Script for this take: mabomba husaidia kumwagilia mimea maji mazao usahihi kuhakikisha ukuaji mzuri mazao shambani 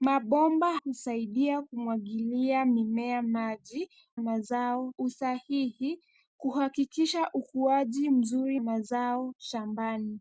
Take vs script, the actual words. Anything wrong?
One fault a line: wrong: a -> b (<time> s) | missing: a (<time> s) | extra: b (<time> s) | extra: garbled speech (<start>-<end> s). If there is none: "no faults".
no faults